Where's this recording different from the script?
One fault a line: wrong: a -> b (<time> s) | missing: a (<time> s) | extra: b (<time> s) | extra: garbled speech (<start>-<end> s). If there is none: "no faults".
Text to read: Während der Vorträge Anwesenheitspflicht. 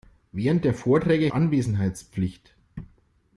no faults